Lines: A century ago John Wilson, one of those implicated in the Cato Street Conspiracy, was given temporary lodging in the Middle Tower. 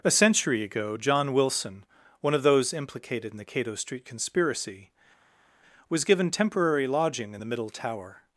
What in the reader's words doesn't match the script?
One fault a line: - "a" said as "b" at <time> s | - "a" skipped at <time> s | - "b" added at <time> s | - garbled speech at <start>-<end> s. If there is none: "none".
none